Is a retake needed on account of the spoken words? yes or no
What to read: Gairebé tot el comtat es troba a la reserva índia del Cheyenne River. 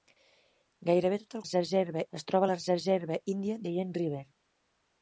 yes